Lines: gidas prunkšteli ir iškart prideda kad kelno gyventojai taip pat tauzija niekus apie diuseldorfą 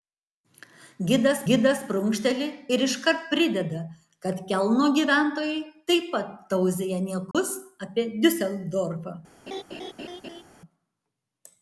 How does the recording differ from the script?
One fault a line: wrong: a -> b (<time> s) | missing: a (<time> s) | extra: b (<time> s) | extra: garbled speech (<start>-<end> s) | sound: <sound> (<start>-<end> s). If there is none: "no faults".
extra: gidas (1.5 s)
sound: dropout (7.3-7.3 s)
sound: laugh (9.5-10.4 s)